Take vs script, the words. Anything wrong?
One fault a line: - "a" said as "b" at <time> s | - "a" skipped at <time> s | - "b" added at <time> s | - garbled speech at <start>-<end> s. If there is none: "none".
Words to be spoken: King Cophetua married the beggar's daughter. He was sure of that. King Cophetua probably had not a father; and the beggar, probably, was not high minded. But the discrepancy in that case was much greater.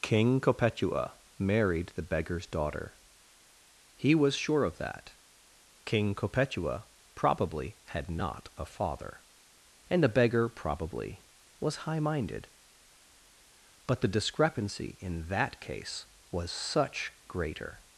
- "not" skipped at 11.8 s
- "much" said as "such" at 16.5 s